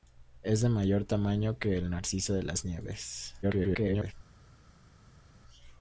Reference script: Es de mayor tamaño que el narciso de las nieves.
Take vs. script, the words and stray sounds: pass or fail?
fail